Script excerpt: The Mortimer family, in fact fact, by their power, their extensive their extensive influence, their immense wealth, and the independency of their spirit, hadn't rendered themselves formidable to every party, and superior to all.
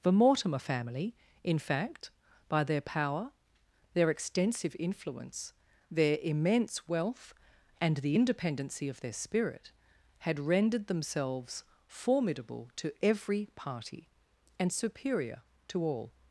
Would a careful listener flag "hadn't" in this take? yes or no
yes